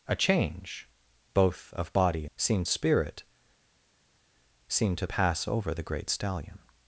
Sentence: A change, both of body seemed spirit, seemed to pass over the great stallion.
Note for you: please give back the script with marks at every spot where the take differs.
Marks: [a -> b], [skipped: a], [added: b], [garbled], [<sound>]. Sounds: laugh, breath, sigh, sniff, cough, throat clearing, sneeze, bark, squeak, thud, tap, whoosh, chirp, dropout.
A change, both of body seemed spirit, seemed to pass over the great stallion.